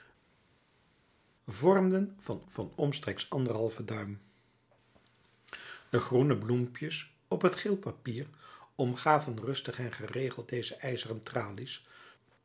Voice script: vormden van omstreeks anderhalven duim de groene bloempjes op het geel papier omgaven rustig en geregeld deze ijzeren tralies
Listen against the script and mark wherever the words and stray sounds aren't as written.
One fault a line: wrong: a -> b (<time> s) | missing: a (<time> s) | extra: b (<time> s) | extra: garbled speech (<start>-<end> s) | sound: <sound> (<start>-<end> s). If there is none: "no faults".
extra: van (2.5 s)